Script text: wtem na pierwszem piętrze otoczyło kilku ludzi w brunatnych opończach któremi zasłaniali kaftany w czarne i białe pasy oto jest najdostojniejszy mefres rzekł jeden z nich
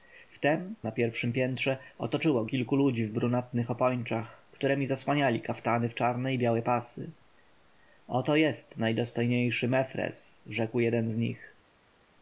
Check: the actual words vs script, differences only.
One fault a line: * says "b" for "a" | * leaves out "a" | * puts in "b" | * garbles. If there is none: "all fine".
all fine